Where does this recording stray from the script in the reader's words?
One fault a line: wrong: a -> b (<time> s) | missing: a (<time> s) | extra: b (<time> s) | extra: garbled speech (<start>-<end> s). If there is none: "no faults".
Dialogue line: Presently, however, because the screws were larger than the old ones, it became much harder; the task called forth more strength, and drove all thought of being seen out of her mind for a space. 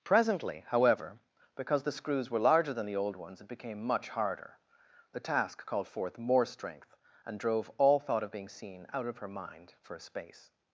no faults